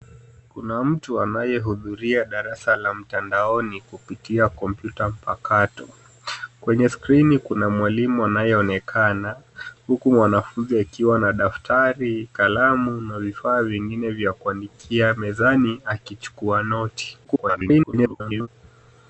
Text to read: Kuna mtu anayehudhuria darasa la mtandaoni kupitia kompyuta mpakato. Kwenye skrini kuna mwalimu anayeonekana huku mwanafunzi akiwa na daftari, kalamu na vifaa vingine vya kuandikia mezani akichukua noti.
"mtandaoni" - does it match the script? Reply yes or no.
yes